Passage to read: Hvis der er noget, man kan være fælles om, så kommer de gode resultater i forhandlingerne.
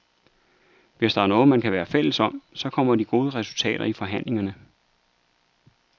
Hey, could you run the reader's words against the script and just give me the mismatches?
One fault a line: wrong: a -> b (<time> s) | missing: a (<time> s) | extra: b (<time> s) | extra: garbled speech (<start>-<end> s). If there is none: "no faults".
no faults